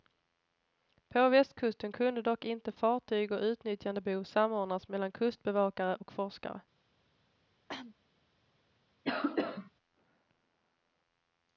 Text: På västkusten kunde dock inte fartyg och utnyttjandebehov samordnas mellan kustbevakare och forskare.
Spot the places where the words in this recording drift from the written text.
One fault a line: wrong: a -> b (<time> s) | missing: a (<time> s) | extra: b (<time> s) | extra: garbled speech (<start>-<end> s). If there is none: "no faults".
no faults